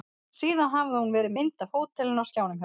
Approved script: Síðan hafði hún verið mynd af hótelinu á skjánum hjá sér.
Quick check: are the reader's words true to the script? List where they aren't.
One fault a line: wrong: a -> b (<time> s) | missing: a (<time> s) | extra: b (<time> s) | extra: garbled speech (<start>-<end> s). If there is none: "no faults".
no faults